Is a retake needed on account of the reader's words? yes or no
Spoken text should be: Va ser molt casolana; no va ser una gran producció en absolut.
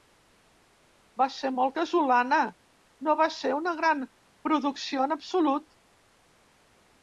no